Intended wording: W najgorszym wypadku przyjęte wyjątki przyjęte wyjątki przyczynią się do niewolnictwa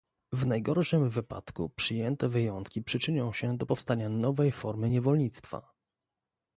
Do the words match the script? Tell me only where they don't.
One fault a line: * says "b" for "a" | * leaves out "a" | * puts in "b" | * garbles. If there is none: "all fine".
* leaves out "przyjęte wyjątki"
* puts in "powstania nowej formy"